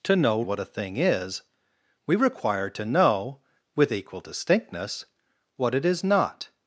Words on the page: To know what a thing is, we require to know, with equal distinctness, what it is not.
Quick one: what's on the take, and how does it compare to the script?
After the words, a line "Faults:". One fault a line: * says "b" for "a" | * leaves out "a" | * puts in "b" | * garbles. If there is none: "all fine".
To know what a thing is, we require to know, with equal distinctness, what it is not.
Faults:
all fine